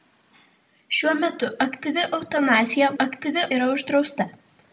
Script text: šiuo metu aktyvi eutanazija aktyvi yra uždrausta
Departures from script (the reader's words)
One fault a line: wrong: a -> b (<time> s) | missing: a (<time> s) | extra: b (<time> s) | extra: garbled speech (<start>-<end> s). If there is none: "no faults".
no faults